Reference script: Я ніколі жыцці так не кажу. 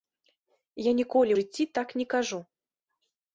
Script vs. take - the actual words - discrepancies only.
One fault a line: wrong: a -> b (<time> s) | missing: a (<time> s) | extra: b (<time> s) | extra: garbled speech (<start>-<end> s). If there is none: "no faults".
no faults